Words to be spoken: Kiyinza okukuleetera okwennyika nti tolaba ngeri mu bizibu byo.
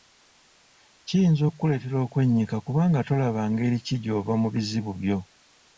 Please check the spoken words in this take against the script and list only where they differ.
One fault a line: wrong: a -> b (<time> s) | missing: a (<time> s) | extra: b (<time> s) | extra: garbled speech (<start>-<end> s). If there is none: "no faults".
wrong: nti -> kubanga (2.6 s)
extra: ki gy'ova (3.8 s)